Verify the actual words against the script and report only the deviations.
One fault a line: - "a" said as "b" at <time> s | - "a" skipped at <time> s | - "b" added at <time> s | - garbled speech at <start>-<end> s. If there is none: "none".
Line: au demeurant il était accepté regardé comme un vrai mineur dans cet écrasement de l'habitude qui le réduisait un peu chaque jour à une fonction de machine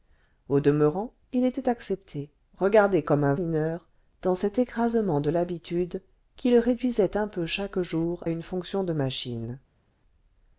- "vrai" skipped at 3.4 s
- "à" skipped at 8.2 s